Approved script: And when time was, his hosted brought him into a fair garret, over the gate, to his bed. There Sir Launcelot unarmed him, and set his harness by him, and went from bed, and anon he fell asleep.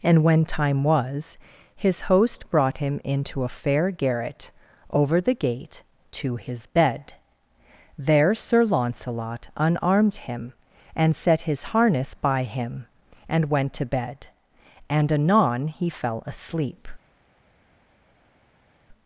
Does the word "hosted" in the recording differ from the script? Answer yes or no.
yes